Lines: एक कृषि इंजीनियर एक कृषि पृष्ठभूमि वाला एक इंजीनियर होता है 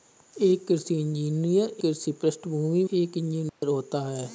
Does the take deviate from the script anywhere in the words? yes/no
yes